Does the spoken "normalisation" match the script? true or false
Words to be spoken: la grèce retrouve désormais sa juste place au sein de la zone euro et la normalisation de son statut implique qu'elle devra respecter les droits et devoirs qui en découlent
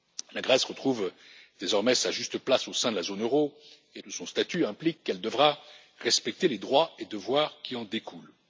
false